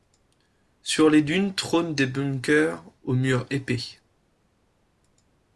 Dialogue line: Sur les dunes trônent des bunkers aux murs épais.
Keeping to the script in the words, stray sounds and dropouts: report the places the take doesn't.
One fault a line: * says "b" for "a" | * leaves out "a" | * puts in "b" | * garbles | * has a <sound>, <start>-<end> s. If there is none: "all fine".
all fine